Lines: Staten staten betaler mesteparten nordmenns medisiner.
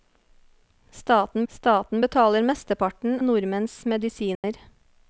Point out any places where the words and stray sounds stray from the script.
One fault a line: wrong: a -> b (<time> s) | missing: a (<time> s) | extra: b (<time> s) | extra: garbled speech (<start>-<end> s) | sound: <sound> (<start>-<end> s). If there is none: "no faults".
sound: dropout (4.3-4.4 s)